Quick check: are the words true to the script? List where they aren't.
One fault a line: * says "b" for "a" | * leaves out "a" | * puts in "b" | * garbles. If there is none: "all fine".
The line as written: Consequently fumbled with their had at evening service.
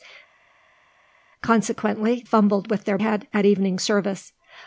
all fine